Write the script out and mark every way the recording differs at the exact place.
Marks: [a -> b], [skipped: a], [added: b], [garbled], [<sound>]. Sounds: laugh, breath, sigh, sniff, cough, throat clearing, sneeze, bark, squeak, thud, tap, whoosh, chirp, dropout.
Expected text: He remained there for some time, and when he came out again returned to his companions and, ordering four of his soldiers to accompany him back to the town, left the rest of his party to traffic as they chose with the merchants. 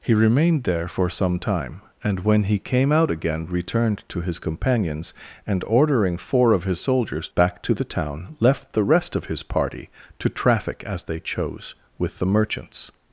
He remained there for some time, and when he came out again returned to his companions and, ordering four of his soldiers [skipped: to accompany him] back to the town, left the rest of his party to traffic as they chose with the merchants.